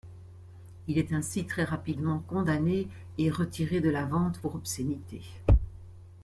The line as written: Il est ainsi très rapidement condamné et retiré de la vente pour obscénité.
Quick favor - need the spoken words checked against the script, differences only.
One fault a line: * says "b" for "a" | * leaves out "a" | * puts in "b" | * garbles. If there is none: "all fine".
all fine